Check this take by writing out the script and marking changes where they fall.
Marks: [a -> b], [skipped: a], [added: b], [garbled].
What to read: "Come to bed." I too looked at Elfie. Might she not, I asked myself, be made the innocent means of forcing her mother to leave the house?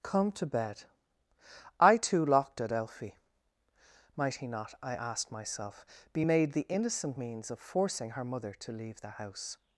"Come to bed." I too [looked -> locked] at Elfie. Might [she -> he] not, I asked myself, be made the innocent means of forcing her mother to leave the house?